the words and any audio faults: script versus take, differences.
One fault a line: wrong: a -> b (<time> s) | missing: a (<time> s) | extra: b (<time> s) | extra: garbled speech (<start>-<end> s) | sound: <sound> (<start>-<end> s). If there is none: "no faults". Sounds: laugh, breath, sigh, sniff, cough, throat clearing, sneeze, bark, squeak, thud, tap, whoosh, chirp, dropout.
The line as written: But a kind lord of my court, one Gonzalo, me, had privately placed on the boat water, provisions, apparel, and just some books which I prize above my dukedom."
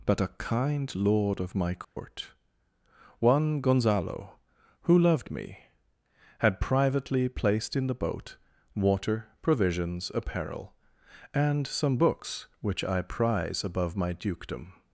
sound: dropout (1.8-2.0 s)
extra: who loved (4.8 s)
wrong: on -> in (7.8 s)
missing: just (11.7 s)